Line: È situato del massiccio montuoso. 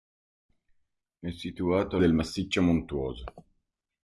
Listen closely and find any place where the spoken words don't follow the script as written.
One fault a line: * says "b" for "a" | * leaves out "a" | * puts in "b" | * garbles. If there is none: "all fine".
all fine